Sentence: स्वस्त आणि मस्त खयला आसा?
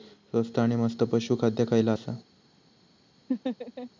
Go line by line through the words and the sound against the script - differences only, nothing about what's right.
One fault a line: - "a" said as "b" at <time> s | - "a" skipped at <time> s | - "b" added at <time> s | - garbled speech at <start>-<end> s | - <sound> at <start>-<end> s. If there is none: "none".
- "पशू खाद्य" added at 1.0 s
- laugh at 3.3-3.9 s